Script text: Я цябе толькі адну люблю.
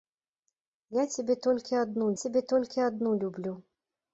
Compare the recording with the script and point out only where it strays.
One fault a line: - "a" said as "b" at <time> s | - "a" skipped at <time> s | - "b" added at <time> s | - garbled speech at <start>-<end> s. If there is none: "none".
- "цябе толькі адну" added at 2.2 s